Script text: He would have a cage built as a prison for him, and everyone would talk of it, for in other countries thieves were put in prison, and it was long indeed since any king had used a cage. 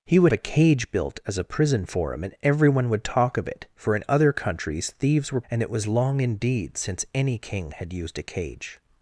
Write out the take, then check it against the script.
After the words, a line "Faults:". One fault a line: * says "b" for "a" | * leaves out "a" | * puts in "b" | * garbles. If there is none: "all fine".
He would a cage built as a prison for him, and everyone would talk of it, for in other countries thieves were and it was long indeed since any king had used a cage.
Faults:
* leaves out "have"
* leaves out "put in prison"